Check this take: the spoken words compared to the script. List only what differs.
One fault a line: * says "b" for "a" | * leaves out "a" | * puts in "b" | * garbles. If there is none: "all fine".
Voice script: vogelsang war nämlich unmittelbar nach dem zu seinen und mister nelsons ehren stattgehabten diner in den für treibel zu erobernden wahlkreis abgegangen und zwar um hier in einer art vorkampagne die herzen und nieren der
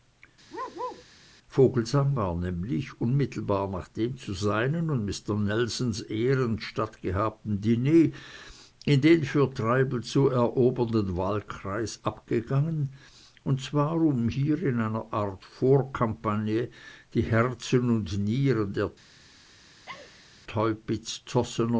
all fine